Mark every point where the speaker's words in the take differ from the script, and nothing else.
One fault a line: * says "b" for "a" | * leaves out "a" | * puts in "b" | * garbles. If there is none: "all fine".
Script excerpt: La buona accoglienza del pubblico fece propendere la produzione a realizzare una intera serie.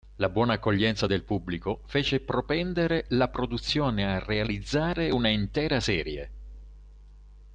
all fine